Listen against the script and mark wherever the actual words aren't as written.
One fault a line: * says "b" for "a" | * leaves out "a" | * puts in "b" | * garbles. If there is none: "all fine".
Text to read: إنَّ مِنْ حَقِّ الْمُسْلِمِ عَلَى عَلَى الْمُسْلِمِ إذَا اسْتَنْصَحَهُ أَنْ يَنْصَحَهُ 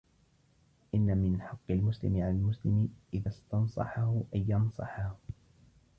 * leaves out "عَلَى"